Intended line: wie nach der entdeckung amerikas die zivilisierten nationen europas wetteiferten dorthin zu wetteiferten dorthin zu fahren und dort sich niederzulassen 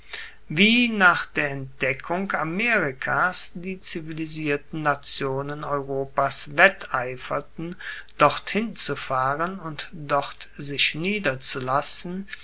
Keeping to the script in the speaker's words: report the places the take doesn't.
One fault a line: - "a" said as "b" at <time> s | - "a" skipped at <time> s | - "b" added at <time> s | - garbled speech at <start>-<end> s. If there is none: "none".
- "wetteiferten dorthin zu" skipped at 8.9 s